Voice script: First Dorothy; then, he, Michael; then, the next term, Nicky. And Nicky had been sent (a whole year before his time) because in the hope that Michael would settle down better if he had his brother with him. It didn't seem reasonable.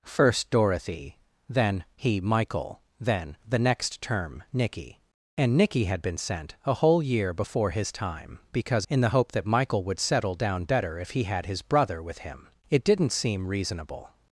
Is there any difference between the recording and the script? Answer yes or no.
no